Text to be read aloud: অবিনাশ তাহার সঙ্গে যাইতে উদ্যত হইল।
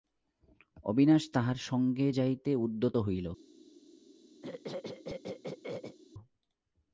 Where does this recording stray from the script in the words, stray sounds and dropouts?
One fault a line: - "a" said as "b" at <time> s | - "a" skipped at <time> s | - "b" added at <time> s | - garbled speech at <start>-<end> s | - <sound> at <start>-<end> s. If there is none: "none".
- throat clearing at 4.4-6.0 s